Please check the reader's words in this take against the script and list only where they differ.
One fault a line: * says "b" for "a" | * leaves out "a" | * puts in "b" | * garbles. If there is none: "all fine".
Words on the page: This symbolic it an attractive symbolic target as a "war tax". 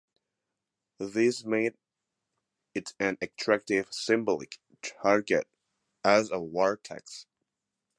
* says "made" for "symbolic"